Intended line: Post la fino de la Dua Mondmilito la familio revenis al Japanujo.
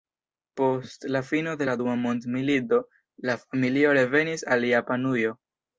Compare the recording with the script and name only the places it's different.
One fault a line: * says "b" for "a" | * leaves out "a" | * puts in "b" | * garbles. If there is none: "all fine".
all fine